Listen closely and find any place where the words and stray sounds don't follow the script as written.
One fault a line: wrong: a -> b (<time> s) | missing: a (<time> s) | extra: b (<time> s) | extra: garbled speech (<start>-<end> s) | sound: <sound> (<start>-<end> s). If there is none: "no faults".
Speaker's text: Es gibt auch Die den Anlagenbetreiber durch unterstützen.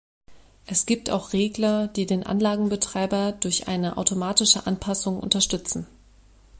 extra: Regler (1.3 s)
extra: eine automatische Anpassung (3.7 s)